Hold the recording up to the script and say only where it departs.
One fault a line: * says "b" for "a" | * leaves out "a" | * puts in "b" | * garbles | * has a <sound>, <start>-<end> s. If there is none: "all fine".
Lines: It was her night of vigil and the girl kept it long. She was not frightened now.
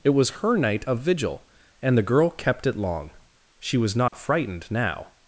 * has a dropout, 4.1-4.1 s